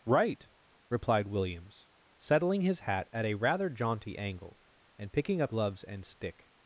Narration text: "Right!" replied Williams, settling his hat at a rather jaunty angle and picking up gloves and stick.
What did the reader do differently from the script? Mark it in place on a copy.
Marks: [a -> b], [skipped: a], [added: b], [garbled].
"Right!" replied Williams, settling his hat at a rather jaunty angle and picking up gloves and stick.